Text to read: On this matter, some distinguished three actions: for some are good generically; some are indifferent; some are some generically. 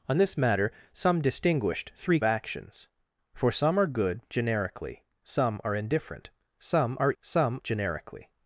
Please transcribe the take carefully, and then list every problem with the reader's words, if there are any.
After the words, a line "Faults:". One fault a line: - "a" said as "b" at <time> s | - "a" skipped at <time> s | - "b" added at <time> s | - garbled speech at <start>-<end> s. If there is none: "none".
On this matter, some distinguished three actions: for some are good generically; some are indifferent; some are some generically.
Faults:
none